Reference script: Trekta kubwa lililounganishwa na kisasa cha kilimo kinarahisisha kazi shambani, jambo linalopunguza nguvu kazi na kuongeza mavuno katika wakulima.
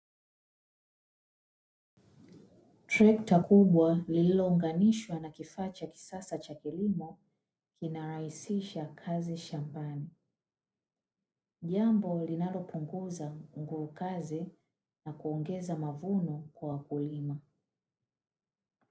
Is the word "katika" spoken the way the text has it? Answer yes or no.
no